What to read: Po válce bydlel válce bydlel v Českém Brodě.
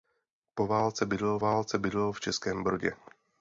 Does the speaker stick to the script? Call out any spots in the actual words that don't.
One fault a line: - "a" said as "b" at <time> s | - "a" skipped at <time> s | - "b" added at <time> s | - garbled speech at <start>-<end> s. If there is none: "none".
none